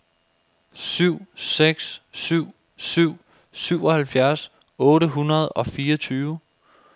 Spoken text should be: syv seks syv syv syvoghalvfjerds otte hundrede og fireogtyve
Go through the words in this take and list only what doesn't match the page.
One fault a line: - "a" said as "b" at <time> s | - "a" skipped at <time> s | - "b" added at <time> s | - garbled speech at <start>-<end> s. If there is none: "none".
none